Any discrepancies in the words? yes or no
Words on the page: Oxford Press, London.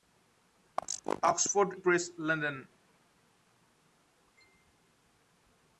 no